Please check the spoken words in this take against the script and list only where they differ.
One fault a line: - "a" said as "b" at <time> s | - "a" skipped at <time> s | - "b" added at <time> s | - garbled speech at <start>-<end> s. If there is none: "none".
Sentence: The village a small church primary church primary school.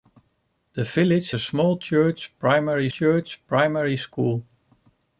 none